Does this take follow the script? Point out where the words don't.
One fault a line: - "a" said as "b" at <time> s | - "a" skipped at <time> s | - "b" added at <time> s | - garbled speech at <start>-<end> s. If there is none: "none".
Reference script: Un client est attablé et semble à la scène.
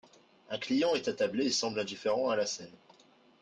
- "indifférent" added at 1.8 s